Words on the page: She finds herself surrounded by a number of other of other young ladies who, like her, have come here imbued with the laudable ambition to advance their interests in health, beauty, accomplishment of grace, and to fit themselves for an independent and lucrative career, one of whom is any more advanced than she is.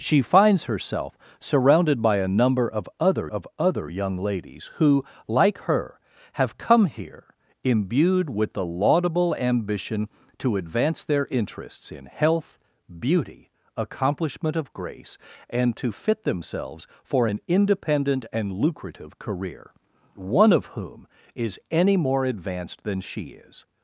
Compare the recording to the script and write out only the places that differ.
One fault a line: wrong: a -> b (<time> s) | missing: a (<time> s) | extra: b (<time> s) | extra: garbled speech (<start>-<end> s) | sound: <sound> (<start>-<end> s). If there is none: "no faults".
no faults